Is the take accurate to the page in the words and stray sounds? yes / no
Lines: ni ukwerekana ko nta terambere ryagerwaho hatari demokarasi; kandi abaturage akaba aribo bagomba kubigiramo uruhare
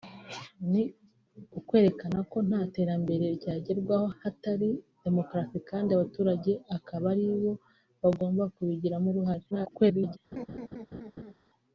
no